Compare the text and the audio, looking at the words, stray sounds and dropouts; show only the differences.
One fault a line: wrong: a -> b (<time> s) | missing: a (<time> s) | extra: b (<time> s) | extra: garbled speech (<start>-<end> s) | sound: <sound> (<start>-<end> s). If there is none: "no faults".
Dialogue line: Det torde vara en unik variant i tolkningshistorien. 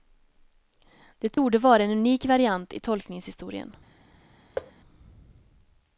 sound: dropout (1.3-1.4 s)
sound: thud (4.6-4.7 s)